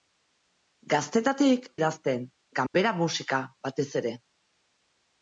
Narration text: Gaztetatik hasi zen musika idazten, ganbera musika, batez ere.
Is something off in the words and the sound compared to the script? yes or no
yes